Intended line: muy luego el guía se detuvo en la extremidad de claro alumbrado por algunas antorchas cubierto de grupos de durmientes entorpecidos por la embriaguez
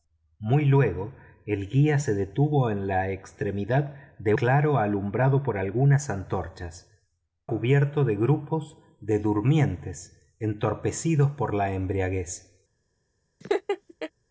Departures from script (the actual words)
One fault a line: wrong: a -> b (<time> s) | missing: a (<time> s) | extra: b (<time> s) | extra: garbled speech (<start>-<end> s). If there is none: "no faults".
no faults